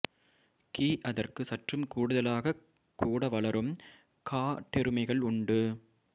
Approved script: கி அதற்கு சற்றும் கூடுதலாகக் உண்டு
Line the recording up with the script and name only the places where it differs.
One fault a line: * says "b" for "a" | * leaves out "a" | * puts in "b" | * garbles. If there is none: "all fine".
* puts in "கூட வளரும் காட்டெருமைகள்"